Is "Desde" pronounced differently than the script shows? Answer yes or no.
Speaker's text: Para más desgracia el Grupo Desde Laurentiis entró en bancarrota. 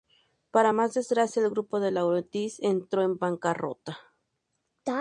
yes